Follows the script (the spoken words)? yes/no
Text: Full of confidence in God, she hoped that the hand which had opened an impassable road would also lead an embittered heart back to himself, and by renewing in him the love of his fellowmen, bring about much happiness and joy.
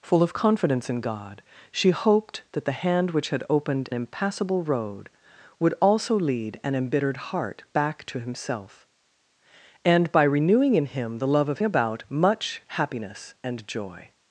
no